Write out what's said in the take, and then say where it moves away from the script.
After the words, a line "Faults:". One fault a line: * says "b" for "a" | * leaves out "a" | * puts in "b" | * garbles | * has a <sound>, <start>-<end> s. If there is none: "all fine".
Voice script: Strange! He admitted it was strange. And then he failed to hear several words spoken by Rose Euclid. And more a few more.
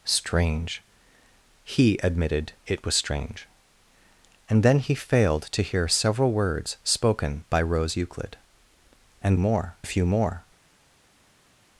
Strange! He admitted it was strange. And then he failed to hear several words spoken by Rose Euclid. And more a few more.
Faults:
all fine